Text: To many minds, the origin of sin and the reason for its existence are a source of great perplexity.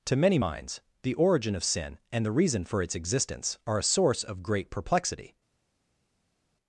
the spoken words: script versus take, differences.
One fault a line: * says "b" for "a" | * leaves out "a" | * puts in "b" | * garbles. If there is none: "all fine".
all fine